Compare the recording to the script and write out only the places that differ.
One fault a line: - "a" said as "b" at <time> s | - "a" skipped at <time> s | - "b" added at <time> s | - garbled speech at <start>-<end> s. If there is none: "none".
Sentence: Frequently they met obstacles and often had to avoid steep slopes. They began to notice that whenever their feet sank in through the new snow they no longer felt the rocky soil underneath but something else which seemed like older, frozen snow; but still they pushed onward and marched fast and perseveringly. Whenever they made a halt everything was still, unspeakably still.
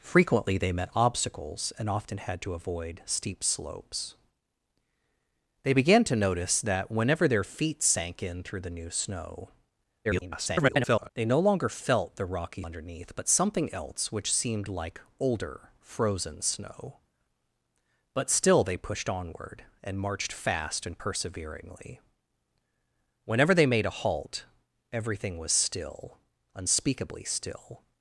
- garbled speech at 10.0-11.1 s
- "soil" skipped at 12.6 s